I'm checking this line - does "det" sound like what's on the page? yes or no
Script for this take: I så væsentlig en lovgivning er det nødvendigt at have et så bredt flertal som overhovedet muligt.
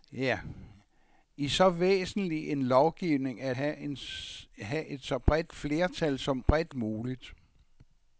no